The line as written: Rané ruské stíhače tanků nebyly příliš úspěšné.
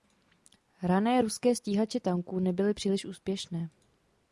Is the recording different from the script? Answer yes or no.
no